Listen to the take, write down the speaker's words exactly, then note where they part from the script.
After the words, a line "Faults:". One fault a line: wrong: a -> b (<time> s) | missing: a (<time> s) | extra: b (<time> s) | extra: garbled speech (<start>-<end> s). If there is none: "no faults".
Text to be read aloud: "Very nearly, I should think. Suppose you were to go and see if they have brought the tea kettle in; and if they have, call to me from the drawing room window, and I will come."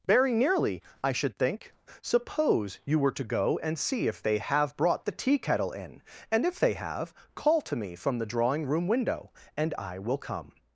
"Very nearly, I should think. Suppose you were to go and see if they have brought the tea kettle in; and if they have, call to me from the drawing room window, and I will come."
Faults:
no faults